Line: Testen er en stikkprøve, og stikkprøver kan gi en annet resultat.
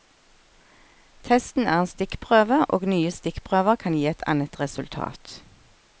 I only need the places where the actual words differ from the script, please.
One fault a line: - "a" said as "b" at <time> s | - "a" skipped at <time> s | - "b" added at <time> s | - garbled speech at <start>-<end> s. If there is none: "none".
- "nye" added at 2.9 s
- "en" said as "et" at 4.1 s